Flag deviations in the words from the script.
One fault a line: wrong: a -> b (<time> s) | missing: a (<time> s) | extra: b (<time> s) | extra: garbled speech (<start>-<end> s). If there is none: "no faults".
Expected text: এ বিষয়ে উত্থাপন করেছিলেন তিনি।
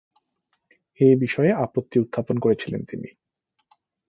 extra: আপত্তি (1.6 s)